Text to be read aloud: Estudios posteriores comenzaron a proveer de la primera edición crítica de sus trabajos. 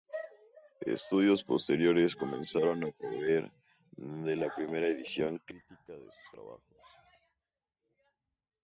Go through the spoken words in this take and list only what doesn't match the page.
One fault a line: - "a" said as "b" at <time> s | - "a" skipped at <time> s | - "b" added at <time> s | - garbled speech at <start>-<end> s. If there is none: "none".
none